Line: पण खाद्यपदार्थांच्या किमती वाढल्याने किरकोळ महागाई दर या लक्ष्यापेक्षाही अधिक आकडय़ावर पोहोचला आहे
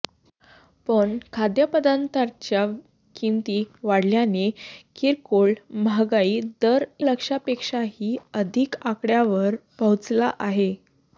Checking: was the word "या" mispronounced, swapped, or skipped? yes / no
yes